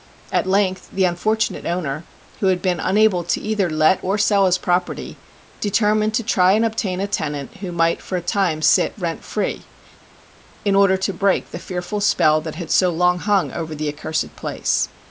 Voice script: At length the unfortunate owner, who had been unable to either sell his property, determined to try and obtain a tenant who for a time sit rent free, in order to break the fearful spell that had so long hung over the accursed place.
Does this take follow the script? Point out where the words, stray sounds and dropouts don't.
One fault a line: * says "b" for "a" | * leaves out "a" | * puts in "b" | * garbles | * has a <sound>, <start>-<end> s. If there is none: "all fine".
* puts in "let or"
* puts in "might"